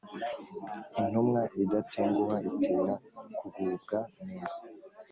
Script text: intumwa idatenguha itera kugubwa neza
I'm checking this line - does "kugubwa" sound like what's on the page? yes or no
yes